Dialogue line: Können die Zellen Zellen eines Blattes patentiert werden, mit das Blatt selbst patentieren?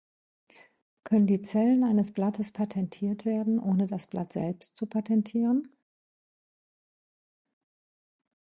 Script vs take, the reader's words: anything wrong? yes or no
yes